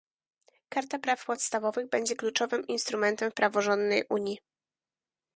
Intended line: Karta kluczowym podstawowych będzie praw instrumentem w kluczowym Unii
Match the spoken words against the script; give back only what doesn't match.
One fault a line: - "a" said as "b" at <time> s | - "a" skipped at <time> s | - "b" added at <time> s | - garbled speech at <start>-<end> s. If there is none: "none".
- "kluczowym" said as "praw" at 1.0 s
- "praw" said as "kluczowym" at 2.1 s
- "kluczowym" said as "praworządnej" at 3.3 s